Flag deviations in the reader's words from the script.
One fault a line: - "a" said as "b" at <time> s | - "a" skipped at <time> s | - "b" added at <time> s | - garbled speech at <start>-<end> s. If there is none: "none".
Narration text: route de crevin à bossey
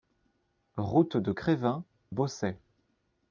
- "à" skipped at 1.8 s